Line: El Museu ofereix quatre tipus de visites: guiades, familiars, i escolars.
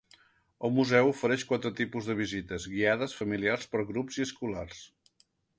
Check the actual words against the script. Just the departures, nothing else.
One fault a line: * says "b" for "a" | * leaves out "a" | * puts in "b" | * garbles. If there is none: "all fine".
* puts in "per grups"